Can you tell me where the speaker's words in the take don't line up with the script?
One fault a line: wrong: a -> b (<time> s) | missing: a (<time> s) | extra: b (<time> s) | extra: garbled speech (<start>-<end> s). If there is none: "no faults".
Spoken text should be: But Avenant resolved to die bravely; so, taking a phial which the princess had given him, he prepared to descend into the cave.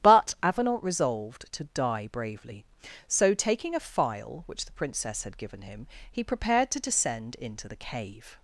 no faults